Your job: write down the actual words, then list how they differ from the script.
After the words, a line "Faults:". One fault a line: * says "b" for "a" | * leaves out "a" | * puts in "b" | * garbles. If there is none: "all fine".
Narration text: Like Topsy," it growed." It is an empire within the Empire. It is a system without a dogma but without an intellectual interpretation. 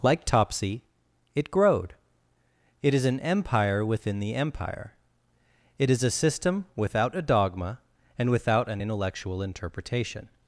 Like Topsy," it growed." It is an empire within the Empire. It is a system without a dogma and without an intellectual interpretation.
Faults:
* says "and" for "but"